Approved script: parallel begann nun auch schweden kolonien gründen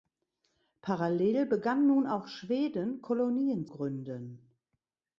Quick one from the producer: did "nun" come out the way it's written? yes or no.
yes